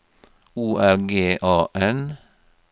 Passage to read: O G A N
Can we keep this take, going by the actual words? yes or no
no